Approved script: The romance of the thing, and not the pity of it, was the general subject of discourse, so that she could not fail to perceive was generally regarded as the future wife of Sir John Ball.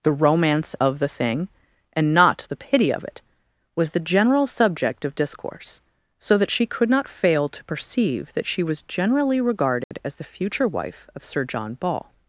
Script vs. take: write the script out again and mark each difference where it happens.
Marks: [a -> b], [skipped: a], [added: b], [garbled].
The romance of the thing, and not the pity of it, was the general subject of discourse, so that she could not fail to perceive [added: that she] was generally regarded as the future wife of Sir John Ball.